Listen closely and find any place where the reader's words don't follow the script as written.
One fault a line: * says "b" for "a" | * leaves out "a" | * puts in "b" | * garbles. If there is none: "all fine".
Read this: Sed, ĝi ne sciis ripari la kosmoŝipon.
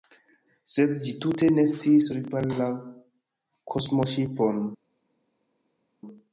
* puts in "tute"